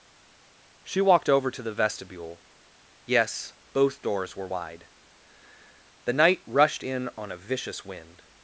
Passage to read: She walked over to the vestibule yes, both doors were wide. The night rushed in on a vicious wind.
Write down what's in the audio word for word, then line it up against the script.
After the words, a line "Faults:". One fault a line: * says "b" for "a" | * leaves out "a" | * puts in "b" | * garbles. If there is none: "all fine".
She walked over to the vestibule yes, both doors were wide. The night rushed in on a vicious wind.
Faults:
all fine